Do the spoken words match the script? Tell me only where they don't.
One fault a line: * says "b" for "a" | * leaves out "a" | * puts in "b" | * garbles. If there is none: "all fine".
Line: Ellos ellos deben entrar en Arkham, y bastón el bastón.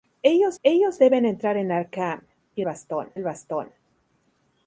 all fine